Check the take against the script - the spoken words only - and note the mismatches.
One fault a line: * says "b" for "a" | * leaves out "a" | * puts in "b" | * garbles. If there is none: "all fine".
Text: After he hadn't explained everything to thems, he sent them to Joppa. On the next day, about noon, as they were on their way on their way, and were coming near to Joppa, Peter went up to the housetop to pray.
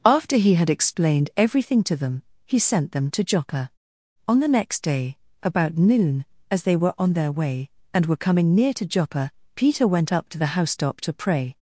* says "had" for "hadn't"
* says "them" for "thems"
* leaves out "on their way"